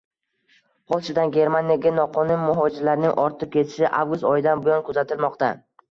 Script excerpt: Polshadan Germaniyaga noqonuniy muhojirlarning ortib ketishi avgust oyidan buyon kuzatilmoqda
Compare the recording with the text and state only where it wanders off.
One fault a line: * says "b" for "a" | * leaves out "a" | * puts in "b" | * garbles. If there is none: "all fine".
all fine